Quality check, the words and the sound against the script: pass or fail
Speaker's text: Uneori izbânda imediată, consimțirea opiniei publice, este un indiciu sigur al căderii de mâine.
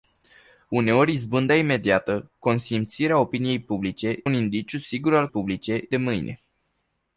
fail